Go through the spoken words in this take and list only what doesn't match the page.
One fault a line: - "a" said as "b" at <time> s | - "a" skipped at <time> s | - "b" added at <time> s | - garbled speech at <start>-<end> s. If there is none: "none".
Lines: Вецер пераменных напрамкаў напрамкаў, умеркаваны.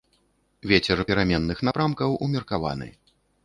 - "напрамкаў" skipped at 2.2 s